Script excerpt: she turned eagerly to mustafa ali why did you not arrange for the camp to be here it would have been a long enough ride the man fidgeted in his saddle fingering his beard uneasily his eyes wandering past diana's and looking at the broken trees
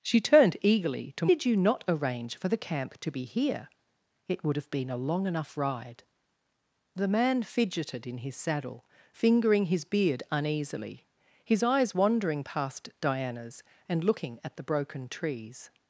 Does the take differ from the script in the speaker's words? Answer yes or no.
yes